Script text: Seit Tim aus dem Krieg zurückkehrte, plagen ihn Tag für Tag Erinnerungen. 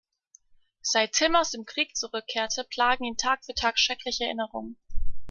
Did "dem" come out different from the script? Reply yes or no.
no